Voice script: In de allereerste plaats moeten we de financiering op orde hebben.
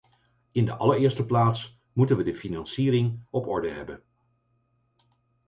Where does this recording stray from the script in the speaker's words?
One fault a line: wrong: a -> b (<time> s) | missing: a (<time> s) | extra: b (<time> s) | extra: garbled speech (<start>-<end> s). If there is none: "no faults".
no faults